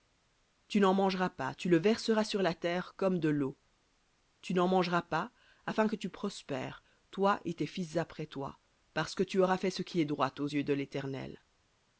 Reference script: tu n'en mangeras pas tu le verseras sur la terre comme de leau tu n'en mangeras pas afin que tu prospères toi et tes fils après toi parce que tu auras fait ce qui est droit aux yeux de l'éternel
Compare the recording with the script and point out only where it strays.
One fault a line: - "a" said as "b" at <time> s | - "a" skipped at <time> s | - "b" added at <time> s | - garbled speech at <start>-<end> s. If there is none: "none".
none